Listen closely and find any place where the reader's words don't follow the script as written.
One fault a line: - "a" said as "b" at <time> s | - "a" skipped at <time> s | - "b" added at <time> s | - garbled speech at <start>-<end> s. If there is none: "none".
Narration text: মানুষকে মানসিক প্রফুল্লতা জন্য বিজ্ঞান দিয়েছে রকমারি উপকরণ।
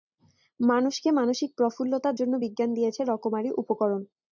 none